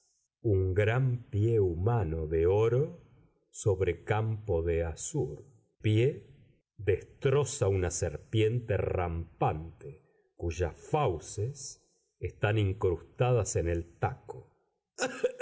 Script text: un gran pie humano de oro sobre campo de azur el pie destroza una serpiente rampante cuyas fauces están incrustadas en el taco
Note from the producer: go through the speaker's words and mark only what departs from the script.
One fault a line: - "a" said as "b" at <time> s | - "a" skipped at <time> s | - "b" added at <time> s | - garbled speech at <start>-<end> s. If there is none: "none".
- "el" skipped at 5.5 s